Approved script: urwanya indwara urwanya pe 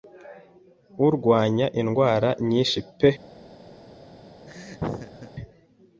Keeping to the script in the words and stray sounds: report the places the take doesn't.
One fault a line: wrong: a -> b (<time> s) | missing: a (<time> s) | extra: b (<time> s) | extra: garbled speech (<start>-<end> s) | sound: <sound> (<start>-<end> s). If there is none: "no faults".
wrong: urwanya -> nyinshi (2.5 s)
sound: laugh (4.5-5.3 s)